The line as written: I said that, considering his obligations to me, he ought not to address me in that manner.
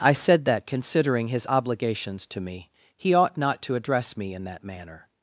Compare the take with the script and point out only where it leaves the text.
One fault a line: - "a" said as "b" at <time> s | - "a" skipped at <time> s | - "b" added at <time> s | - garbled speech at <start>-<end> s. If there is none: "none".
none